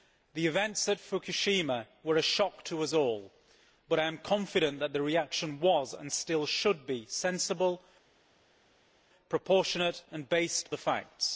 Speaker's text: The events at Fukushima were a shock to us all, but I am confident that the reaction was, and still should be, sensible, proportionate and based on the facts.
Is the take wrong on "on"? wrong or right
wrong